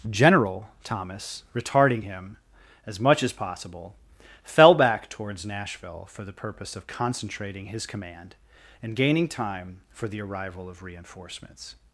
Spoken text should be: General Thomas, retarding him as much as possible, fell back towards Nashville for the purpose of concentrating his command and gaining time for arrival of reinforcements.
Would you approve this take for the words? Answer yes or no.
no